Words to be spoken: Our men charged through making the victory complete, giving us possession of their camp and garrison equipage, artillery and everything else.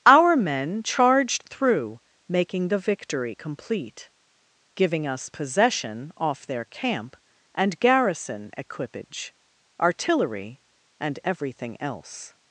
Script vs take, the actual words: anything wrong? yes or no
yes